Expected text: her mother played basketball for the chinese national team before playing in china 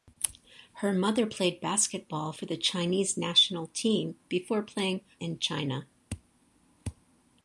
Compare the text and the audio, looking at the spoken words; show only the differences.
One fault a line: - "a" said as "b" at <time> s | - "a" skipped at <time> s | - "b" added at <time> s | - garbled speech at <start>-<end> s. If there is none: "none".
none